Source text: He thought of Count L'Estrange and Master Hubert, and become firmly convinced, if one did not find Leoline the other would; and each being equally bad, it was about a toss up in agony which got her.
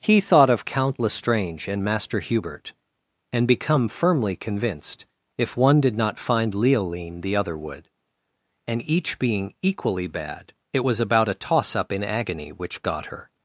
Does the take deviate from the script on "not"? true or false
false